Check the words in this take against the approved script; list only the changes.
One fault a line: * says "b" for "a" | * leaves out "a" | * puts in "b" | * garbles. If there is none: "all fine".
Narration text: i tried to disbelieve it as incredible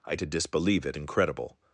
* leaves out "tried"
* leaves out "as"